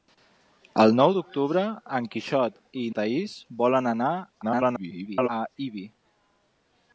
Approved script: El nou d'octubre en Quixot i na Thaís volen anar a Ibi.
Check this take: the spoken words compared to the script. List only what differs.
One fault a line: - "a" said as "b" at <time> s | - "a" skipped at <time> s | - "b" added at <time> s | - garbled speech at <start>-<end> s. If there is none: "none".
- "na" skipped at 2.8 s
- garbled speech at 4.4-5.3 s